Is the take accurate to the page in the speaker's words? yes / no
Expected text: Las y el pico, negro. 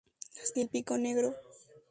yes